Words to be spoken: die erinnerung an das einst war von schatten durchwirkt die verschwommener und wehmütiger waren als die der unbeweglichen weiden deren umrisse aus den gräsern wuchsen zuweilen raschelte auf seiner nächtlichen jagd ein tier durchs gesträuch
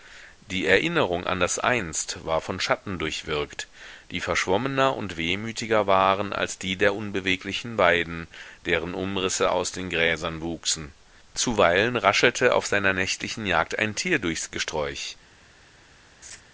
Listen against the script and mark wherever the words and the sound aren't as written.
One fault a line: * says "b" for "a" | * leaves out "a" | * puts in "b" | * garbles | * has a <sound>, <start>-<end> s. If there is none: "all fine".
* has a laugh, 16.2-16.4 s